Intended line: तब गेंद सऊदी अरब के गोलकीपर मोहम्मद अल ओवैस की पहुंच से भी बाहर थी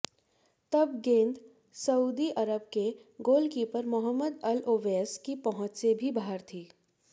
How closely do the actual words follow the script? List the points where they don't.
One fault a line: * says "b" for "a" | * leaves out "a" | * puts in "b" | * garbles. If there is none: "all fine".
all fine